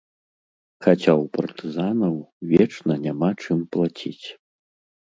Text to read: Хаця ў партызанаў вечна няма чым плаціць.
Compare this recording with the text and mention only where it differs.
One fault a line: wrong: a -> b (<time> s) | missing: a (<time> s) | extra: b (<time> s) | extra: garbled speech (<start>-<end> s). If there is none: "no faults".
no faults